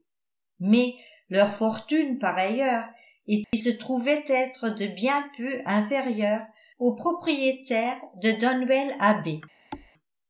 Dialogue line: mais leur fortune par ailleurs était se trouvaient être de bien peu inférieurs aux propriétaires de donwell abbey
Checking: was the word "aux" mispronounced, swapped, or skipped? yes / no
no